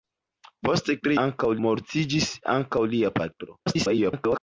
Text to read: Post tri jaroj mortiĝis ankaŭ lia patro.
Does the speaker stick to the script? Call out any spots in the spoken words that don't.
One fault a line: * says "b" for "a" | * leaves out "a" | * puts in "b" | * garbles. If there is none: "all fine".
* says "ankaŭ" for "jaroj"
* garbles